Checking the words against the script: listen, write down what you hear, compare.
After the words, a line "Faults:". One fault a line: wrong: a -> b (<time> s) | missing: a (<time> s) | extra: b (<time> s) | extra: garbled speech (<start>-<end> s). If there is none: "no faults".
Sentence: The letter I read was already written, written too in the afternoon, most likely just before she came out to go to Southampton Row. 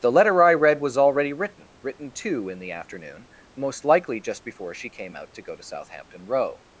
The letter I read was already written, written too in the afternoon, most likely just before she came out to go to Southampton Row.
Faults:
no faults